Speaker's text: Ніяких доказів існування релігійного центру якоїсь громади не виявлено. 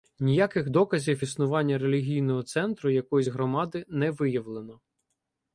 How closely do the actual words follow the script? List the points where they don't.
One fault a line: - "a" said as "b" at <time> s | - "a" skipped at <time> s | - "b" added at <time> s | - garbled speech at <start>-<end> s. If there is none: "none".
none